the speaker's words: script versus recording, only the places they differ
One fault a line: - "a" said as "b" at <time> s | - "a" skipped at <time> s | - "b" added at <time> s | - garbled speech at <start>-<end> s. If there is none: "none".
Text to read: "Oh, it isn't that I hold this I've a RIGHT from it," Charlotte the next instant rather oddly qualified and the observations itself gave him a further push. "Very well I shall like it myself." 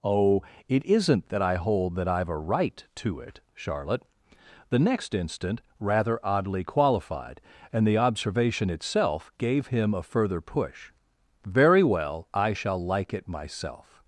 - "this" said as "that" at 1.9 s
- "from" said as "to" at 3.0 s
- "observations" said as "observation" at 8.0 s